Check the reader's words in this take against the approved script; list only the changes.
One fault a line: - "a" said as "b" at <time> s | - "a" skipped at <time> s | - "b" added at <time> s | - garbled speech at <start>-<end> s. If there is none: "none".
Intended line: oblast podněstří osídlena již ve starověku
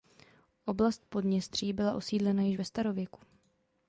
- "byla" added at 1.7 s